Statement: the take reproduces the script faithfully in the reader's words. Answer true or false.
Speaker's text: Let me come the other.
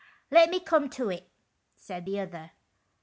false